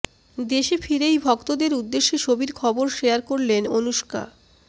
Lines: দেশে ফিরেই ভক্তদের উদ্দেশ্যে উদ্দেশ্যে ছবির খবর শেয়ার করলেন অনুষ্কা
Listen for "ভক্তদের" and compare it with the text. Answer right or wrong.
right